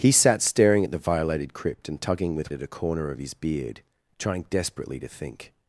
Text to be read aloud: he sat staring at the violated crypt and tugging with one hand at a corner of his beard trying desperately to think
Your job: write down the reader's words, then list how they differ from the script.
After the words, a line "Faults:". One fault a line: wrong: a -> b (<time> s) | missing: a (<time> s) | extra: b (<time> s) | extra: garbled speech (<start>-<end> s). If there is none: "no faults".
he sat staring at the violated crypt and tugging with at a corner of his beard trying desperately to think
Faults:
missing: one hand (2.5 s)